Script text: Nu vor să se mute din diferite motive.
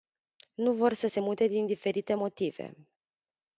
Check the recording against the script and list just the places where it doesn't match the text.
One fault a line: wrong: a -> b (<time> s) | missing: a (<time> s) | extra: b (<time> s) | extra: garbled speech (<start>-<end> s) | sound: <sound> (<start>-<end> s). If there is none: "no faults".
no faults